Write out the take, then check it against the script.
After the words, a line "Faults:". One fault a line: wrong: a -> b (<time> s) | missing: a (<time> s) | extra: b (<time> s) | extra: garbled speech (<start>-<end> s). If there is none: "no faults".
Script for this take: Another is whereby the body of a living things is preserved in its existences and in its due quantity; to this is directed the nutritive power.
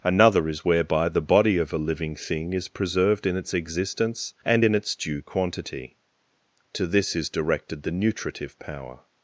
Another is whereby the body of a living thing is preserved in its existence and in its due quantity; to this is directed the nutritive power.
Faults:
wrong: things -> thing (2.1 s)
wrong: existences -> existence (3.5 s)